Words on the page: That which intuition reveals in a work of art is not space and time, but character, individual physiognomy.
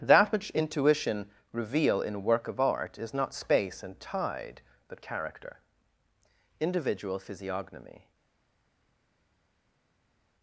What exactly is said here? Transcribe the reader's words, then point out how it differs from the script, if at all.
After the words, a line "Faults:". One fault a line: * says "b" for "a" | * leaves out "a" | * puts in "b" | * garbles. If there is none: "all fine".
That which intuition reveal in a work of art is not space and tide, but character, individual physiognomy.
Faults:
* says "reveal" for "reveals"
* says "tide" for "time"